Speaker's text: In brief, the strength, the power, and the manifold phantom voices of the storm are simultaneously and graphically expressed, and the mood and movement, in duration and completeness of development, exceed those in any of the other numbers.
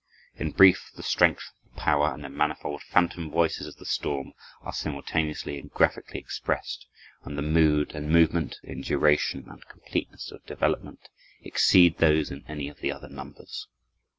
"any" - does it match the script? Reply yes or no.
yes